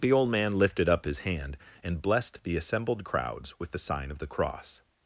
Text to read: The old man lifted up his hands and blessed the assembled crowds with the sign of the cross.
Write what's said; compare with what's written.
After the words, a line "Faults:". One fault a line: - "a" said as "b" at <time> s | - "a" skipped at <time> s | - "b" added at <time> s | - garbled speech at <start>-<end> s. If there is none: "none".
The old man lifted up his hand and blessed the assembled crowds with the sign of the cross.
Faults:
- "hands" said as "hand" at 1.2 s